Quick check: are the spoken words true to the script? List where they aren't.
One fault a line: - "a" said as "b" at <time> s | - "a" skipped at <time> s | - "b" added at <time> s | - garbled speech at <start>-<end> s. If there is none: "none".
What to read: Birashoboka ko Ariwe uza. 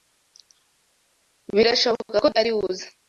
none